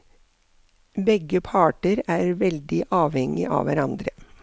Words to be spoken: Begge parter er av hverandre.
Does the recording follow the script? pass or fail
fail